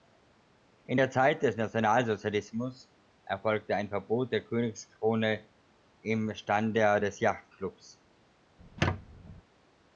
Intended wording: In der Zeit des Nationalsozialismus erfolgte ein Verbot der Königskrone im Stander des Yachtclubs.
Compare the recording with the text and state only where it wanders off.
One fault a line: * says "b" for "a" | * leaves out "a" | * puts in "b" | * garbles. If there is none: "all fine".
all fine